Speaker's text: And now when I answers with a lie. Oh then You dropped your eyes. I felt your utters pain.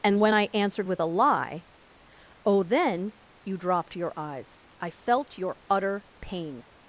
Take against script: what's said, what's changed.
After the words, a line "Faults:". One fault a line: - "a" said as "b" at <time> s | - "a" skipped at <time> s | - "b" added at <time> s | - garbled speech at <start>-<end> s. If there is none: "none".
And when I answered with a lie. Oh then You dropped your eyes. I felt your utter pain.
Faults:
- "now" skipped at 0.2 s
- "answers" said as "answered" at 0.5 s
- "utters" said as "utter" at 5.7 s